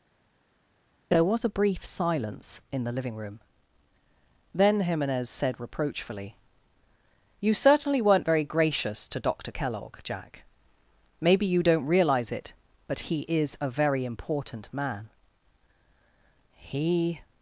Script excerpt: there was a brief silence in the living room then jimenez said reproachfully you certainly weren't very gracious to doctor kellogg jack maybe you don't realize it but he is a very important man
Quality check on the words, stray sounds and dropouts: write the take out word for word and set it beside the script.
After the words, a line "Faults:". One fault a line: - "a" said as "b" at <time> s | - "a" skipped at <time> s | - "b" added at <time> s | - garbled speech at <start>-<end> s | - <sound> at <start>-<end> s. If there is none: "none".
there was a brief silence in the living room then jimenez said reproachfully you certainly weren't very gracious to doctor kellogg jack maybe you don't realize it but he is a very important man he
Faults:
- "he" added at 16.6 s